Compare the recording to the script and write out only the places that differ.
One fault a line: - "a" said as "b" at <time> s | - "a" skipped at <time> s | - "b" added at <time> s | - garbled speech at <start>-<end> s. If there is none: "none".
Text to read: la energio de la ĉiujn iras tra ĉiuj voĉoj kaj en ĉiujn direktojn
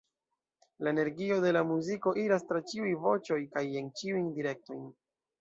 - "ĉiujn" said as "muziko" at 1.7 s